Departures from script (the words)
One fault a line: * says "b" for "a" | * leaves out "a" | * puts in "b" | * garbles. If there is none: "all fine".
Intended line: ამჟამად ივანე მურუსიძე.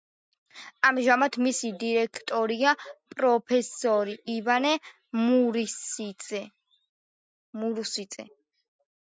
* puts in "მისი დირექტორია პროფესორი"